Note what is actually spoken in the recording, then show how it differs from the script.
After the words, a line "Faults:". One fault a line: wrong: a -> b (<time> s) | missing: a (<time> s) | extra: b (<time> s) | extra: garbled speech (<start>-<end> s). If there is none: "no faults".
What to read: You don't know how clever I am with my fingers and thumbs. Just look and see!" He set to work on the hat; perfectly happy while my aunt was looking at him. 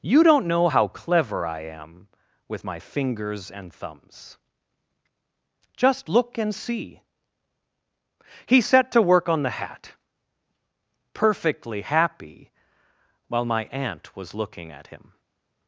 You don't know how clever I am with my fingers and thumbs. Just look and see!" He set to work on the hat; perfectly happy while my aunt was looking at him.
Faults:
no faults